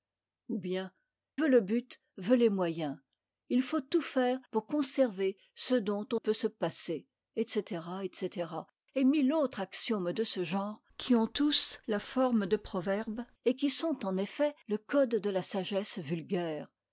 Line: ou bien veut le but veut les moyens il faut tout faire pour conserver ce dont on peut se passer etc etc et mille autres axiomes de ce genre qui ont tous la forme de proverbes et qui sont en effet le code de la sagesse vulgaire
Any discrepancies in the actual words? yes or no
no